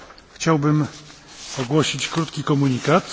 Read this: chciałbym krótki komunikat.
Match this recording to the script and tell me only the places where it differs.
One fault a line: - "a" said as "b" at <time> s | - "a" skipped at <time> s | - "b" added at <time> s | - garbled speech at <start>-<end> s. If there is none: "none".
- "ogłosić" added at 1.6 s